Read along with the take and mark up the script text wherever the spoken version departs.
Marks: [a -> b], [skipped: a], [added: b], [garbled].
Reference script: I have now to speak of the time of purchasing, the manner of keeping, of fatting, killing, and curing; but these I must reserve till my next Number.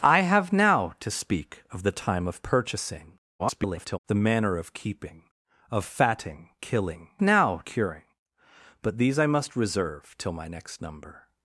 I have now to speak of the time of purchasing, [garbled] the manner of keeping, of fatting, killing, [and -> now] curing; but these I must reserve till my next Number.